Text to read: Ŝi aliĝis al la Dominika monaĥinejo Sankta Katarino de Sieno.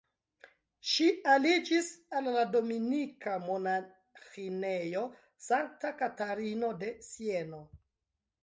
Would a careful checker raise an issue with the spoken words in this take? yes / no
no